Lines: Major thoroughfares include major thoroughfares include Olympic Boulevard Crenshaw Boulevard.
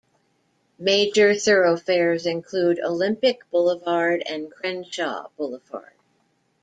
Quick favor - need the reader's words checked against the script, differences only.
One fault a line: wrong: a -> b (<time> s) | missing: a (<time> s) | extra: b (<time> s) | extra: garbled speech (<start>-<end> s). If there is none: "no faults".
missing: major thoroughfares include (2.8 s)
extra: and (4.3 s)